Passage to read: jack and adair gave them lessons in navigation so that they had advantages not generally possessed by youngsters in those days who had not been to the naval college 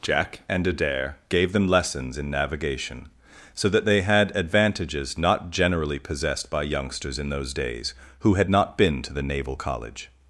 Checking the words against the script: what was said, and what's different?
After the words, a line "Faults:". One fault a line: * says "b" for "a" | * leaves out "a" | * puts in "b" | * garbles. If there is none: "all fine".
jack and adair gave them lessons in navigation so that they had advantages not generally possessed by youngsters in those days who had not been to the naval college
Faults:
all fine